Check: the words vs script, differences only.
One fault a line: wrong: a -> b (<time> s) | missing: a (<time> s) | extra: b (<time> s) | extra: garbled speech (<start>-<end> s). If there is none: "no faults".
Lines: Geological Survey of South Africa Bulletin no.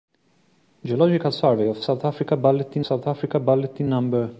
extra: South Africa Bulletin (2.8 s)